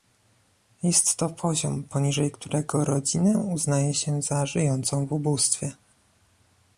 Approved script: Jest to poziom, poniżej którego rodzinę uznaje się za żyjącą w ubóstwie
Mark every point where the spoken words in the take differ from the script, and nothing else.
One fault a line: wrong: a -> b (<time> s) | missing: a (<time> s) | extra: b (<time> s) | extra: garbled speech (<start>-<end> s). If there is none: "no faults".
no faults